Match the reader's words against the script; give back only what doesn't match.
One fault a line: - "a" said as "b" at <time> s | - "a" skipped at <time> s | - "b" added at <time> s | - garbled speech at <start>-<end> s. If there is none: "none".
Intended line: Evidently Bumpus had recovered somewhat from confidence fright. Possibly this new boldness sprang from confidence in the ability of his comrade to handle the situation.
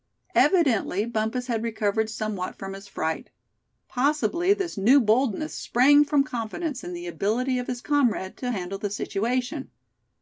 - "confidence" said as "his" at 2.7 s